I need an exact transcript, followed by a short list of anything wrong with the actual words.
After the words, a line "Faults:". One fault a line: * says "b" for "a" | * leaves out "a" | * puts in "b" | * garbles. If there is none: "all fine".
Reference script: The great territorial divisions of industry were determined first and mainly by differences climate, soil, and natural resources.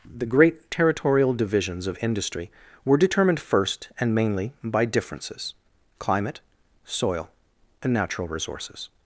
The great territorial divisions of industry were determined first and mainly by differences climate, soil, and natural resources.
Faults:
all fine